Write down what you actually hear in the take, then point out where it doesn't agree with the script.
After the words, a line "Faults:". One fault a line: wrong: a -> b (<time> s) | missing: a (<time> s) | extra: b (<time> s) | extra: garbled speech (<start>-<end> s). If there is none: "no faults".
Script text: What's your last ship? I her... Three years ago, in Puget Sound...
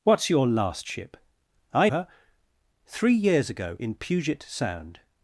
What's your last ship? I her... Three years ago, in Puget Sound...
Faults:
no faults